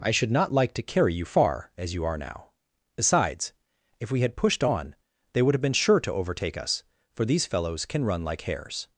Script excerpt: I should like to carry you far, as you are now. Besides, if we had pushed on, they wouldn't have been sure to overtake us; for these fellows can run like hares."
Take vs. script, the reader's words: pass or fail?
fail